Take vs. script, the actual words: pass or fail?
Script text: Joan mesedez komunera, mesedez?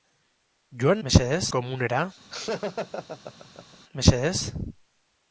pass